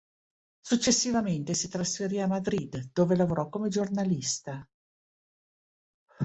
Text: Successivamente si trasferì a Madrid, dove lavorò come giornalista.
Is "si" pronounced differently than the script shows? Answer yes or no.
no